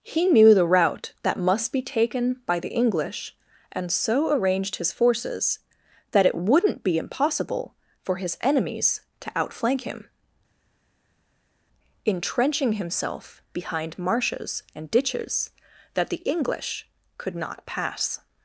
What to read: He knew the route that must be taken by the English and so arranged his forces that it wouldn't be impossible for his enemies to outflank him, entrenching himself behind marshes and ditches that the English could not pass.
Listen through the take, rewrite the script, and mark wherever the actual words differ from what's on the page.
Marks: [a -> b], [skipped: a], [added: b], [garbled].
He knew the route that must be taken by the English and so arranged his forces that it wouldn't be impossible for his enemies to outflank him, entrenching himself behind marshes and ditches that the English could not pass.